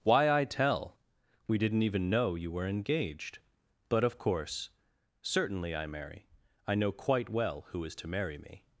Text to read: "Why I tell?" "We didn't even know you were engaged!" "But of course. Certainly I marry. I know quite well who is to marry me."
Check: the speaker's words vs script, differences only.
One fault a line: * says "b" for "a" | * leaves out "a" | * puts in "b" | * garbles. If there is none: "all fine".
all fine